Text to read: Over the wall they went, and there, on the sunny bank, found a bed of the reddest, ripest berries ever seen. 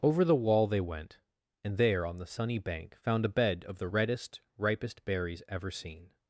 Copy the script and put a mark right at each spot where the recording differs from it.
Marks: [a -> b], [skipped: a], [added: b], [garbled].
Over the wall they went, and there, on the sunny bank, found a bed of the reddest, ripest berries ever seen.